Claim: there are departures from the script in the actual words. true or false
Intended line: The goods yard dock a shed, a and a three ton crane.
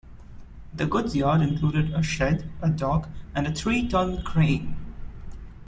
true